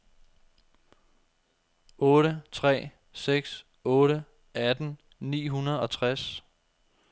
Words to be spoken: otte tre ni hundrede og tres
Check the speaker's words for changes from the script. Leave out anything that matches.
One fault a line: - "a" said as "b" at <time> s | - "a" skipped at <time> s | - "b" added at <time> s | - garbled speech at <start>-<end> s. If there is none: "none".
- "seks otte atten" added at 3.1 s